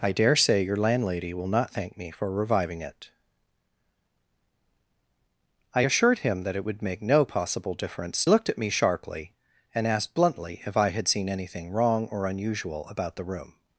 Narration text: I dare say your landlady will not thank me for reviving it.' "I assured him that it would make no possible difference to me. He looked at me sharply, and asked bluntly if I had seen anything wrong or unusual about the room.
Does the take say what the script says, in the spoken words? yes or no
no